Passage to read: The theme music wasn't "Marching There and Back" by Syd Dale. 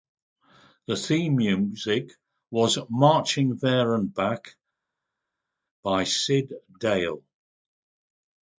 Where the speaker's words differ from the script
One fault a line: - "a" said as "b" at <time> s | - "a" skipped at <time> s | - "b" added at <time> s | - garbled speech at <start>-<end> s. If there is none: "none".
- "wasn't" said as "was" at 2.5 s